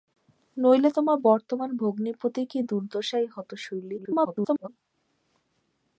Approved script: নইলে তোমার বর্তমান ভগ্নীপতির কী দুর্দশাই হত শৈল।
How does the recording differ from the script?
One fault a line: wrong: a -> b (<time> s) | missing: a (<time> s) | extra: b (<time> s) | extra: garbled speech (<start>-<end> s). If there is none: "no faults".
extra: garbled speech (4.0-4.7 s)